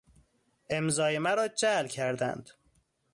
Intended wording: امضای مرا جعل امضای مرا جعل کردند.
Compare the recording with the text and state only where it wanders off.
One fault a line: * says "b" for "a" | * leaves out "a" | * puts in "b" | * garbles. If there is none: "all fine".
* leaves out "امضای مرا جعل"